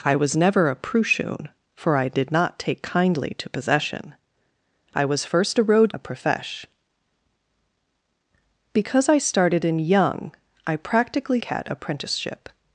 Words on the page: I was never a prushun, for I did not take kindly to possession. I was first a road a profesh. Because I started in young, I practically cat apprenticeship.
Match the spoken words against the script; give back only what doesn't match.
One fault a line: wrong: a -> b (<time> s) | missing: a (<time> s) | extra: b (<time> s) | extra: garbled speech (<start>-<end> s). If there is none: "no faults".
no faults